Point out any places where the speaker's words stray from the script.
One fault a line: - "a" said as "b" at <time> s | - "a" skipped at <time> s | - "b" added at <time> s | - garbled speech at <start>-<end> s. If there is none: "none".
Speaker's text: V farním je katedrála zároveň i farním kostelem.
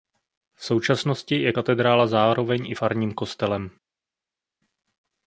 - "farním" said as "současnosti" at 0.7 s